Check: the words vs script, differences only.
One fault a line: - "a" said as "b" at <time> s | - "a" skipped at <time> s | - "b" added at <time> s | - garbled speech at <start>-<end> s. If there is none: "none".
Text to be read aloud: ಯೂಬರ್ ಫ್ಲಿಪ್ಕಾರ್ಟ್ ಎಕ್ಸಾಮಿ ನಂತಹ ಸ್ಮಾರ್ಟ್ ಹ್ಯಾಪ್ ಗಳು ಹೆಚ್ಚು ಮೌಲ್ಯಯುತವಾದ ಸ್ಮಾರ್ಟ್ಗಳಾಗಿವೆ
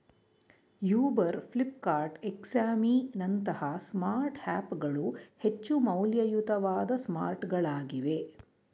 none